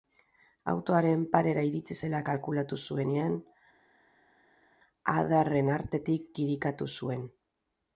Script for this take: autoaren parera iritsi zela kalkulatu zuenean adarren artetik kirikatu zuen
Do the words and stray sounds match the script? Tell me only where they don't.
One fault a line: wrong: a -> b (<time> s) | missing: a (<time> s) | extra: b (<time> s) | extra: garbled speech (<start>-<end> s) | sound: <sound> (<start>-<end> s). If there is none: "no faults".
no faults